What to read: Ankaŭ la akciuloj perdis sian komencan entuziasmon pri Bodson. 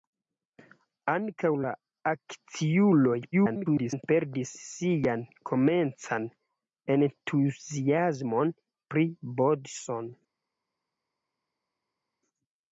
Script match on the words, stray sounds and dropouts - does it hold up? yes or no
no